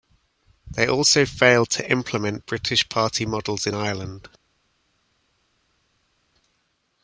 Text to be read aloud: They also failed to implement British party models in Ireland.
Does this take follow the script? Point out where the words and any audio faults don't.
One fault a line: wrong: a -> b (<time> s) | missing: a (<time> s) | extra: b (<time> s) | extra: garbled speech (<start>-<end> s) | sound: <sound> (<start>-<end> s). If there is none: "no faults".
no faults